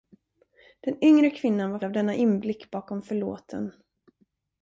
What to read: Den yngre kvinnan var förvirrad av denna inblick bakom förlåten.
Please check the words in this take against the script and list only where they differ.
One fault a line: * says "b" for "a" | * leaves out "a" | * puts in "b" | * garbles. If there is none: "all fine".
* leaves out "förvirrad"